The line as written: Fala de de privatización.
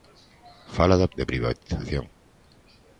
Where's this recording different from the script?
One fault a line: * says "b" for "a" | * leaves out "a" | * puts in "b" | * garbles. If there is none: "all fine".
all fine